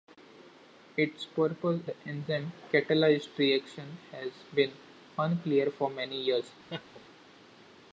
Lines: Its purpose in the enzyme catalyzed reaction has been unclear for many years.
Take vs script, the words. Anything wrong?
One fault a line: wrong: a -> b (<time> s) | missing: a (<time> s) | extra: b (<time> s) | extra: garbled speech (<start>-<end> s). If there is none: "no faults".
missing: in (1.8 s)